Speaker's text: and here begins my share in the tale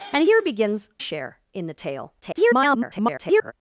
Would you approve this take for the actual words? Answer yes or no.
no